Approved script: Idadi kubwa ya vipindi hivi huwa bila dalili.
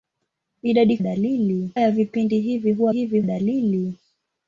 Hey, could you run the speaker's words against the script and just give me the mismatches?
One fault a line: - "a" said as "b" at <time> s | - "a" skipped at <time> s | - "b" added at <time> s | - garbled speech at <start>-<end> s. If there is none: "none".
- "kubwa" said as "dalili" at 1.0 s
- "bila" said as "hivi" at 2.9 s